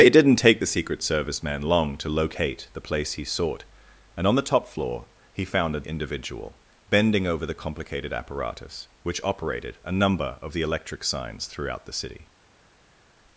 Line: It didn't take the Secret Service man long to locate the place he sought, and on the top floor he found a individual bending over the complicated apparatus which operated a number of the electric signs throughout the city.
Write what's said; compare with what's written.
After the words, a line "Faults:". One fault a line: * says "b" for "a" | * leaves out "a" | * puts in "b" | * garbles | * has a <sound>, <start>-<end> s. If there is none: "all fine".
It didn't take the Secret Service man long to locate the place he sought, and on the top floor he found a individual bending over the complicated apparatus which operated a number of the electric signs throughout the city.
Faults:
all fine